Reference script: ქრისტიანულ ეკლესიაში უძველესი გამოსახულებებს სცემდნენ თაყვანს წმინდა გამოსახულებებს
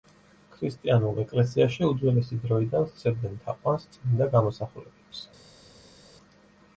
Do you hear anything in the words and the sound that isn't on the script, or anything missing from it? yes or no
yes